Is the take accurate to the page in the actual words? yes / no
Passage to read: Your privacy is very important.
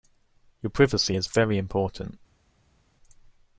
yes